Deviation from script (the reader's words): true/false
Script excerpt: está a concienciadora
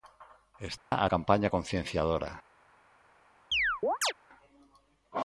true